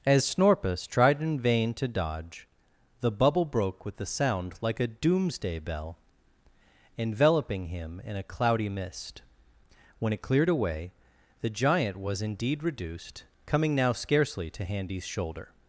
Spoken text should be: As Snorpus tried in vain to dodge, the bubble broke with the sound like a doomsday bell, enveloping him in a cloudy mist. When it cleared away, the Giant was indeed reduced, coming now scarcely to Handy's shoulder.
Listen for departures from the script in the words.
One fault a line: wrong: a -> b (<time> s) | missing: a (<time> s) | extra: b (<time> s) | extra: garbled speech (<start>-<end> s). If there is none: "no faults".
wrong: the -> a (4.0 s)